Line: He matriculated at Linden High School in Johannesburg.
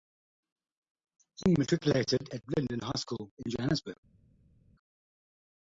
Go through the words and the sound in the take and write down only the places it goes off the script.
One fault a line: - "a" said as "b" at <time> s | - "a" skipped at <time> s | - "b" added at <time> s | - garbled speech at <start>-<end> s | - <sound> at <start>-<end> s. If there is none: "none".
none